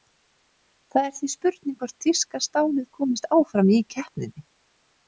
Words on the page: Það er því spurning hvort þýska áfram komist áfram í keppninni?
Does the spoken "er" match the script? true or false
true